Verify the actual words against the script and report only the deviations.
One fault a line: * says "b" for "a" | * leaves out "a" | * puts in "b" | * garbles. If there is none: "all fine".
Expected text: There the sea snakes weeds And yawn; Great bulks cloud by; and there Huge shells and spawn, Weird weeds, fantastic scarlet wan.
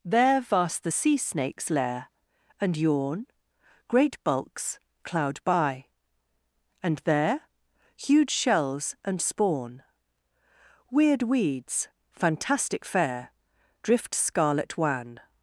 * puts in "vast"
* says "lair" for "weeds"
* puts in "fair Drift"